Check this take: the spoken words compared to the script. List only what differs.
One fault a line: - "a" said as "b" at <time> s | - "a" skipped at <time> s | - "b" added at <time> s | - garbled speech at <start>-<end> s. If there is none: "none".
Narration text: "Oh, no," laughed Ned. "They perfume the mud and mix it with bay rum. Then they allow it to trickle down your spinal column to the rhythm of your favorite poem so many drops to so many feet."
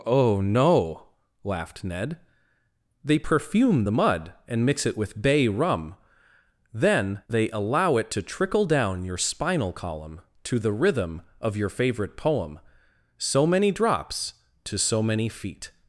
none